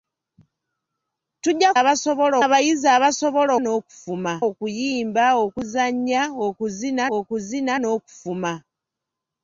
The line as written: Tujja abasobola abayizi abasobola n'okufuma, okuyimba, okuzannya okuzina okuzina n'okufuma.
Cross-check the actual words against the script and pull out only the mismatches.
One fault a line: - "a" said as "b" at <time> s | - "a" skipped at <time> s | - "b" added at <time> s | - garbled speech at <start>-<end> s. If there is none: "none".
none